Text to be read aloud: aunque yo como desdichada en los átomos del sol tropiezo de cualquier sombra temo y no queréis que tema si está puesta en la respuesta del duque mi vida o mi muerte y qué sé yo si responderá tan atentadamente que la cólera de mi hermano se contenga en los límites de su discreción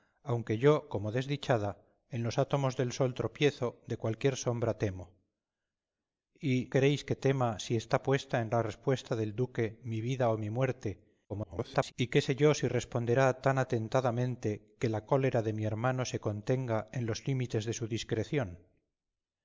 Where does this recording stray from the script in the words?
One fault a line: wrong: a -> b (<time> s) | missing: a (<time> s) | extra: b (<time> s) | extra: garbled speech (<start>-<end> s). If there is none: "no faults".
missing: no (6.7 s)
extra: garbled speech (11.3-11.9 s)